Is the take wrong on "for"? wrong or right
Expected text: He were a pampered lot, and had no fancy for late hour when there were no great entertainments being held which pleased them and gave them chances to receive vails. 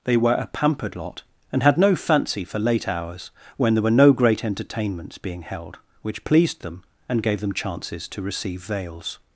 right